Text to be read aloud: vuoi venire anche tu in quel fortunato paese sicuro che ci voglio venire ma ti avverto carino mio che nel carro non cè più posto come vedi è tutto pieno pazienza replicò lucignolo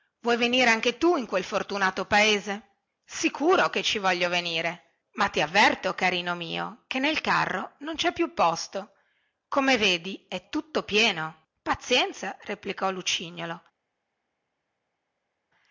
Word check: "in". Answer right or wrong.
right